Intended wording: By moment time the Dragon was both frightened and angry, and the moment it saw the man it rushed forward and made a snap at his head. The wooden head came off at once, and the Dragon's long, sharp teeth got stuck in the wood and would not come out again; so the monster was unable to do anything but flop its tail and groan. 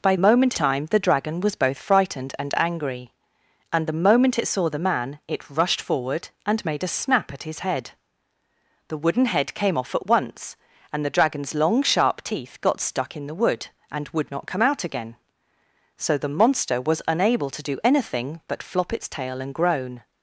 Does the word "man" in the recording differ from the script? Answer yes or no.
no